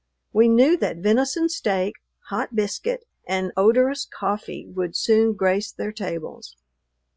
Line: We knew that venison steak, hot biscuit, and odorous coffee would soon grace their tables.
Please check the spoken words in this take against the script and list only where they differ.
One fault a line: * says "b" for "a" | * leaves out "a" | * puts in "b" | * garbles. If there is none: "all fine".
all fine